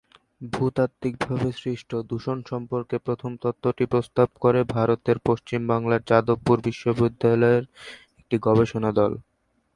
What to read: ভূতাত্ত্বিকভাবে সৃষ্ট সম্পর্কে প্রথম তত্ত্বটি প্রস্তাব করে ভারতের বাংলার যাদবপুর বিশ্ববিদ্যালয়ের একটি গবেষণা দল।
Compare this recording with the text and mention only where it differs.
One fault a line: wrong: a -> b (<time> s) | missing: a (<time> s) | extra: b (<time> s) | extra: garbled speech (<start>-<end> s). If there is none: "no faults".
extra: দূষণ (2.1 s)
extra: পশ্চিম (5.3 s)